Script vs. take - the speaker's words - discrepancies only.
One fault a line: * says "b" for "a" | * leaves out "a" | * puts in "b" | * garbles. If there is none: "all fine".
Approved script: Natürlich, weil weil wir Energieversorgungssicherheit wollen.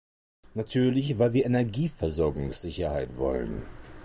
* leaves out "weil"